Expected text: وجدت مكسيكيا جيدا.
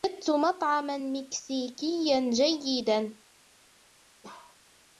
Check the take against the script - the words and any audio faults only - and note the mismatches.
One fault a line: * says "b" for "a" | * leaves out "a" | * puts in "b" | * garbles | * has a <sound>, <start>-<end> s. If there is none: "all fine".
* puts in "مطعما"
* has a bark, 4.2-4.6 s